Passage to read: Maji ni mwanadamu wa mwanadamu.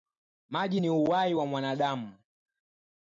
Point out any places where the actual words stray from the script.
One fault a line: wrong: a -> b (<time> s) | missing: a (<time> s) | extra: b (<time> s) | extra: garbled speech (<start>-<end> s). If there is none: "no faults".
wrong: mwanadamu -> uhai (0.9 s)